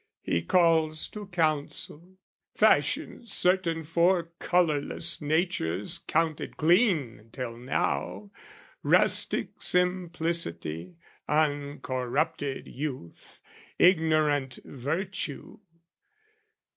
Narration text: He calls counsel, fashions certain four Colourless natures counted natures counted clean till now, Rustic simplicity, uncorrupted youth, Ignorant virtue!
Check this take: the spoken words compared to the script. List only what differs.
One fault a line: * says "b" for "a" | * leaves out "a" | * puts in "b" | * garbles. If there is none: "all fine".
* puts in "to"
* leaves out "natures counted"